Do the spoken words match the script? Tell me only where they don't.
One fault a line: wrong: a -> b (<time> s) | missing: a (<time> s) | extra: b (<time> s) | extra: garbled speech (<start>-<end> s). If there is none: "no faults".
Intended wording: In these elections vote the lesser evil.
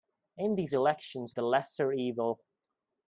missing: vote (1.3 s)